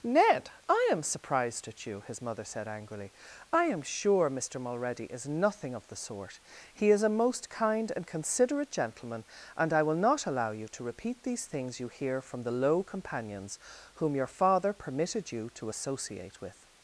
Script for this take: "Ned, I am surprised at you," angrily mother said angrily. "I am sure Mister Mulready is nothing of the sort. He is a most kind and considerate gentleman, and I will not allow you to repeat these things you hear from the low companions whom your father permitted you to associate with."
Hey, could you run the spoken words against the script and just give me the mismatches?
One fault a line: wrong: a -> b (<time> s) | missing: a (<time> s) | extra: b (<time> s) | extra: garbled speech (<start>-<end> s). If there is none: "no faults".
wrong: angrily -> his (2.0 s)